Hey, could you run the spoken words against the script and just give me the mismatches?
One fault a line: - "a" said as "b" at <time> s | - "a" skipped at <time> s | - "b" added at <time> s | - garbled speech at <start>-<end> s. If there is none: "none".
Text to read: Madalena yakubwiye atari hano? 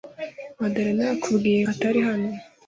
none